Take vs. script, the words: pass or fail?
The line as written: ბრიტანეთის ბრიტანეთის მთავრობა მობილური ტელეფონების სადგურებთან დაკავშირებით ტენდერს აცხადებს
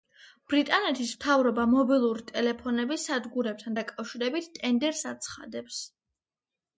fail